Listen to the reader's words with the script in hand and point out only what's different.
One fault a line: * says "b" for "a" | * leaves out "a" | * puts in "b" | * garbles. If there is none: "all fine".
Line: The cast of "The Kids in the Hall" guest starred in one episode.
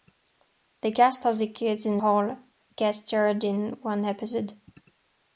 * leaves out "the"